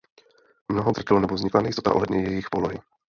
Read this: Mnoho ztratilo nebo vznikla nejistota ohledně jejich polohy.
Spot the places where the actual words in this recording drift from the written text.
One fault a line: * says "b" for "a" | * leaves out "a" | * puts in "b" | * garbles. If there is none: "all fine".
all fine